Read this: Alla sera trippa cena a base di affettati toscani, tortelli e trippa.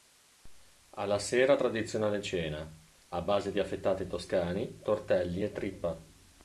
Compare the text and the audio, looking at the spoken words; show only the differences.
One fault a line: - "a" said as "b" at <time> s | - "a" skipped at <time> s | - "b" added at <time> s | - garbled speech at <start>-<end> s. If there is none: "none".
- "trippa" said as "tradizionale" at 1.5 s